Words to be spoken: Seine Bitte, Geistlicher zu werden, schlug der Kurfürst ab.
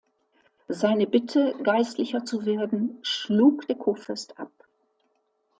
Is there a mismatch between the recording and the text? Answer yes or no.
no